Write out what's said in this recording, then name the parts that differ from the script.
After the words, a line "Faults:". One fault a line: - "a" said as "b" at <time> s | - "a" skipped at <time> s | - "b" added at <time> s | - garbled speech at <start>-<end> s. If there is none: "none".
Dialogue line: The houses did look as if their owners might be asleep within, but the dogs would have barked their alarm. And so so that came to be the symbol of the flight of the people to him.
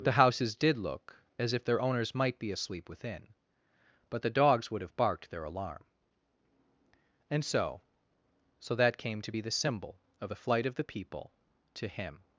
The houses did look as if their owners might be asleep within, but the dogs would have barked their alarm. And so so that came to be the symbol of the flight of the people to him.
Faults:
none